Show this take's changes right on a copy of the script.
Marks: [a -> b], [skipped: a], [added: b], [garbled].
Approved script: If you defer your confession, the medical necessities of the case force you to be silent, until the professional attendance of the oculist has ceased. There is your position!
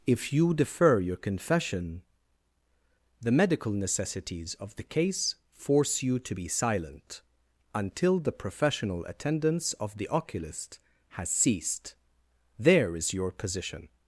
If you defer your confession, the medical necessities of the case force you to be silent, until the professional attendance of the oculist has ceased. There is your position!